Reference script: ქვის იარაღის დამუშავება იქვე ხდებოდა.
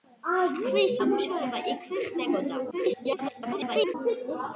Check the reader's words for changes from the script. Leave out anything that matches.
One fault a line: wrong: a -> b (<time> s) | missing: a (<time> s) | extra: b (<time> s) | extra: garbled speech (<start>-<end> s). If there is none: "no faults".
missing: იარაღის (0.9 s)
extra: garbled speech (2.7-3.9 s)